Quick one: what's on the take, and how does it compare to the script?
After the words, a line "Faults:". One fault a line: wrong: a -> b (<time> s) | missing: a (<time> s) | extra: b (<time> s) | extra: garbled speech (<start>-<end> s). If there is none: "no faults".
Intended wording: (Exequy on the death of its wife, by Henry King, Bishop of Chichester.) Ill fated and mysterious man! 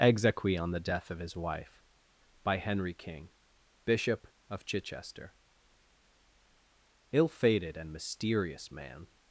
(Exequy on the death of his wife, by Henry King, Bishop of Chichester.) Ill fated and mysterious man!
Faults:
wrong: its -> his (1.2 s)